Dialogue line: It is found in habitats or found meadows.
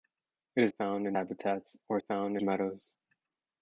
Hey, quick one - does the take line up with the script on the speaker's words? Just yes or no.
yes